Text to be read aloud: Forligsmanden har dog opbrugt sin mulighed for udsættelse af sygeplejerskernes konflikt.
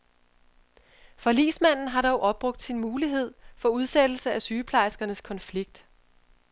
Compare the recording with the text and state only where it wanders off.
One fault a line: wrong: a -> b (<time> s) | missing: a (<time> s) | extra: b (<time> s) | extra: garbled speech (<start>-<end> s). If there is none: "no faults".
no faults